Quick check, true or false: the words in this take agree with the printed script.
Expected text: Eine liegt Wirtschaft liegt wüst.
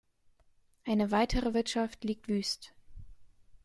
false